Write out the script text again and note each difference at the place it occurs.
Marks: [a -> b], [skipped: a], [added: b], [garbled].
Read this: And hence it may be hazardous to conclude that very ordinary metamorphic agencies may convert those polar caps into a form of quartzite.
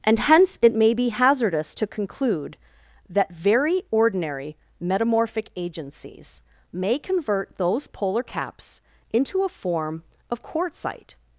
And hence it may be hazardous to conclude that very ordinary metamorphic agencies may convert those polar caps into a form of quartzite.